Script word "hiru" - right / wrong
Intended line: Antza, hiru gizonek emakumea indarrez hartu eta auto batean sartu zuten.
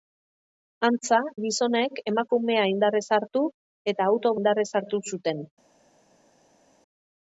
wrong